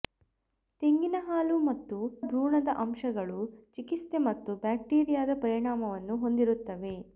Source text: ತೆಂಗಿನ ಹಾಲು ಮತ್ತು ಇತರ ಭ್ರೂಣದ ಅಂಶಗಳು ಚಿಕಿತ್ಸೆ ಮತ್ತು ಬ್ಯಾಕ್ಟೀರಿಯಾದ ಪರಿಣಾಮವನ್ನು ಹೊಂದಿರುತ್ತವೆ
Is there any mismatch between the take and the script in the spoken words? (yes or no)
yes